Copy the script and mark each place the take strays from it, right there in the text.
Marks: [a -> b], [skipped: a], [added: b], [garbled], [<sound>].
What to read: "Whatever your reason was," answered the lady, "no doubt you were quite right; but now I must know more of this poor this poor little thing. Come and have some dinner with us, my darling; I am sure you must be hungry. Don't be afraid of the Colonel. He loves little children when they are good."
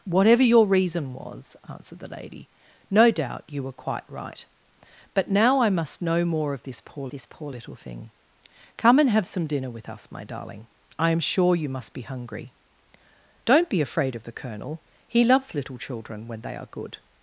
"Whatever your reason was," answered the lady, "no doubt you were quite right; but now I must know more of this poor this poor little thing. Come and have some dinner with us, my darling; I am sure you must be hungry. Don't be afraid of the Colonel. He loves little children when they are good."